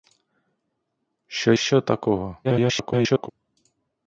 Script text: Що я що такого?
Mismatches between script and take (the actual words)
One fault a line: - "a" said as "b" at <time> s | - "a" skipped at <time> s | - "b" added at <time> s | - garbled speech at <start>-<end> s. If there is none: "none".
- "я" skipped at 1.5 s
- garbled speech at 2.4-3.3 s